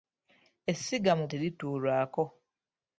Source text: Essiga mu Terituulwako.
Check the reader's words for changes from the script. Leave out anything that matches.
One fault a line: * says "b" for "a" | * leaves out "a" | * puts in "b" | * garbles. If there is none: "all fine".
all fine